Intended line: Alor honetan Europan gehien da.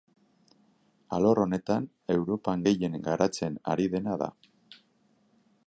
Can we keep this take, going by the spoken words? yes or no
no